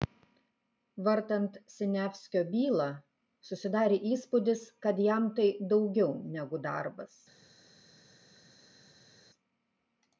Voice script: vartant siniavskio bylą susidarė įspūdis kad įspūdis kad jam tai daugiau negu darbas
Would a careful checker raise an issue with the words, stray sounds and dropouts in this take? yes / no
yes